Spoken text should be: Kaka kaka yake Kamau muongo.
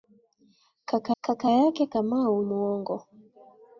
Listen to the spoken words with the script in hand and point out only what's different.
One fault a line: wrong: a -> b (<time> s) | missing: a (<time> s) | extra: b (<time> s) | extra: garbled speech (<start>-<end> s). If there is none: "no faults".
no faults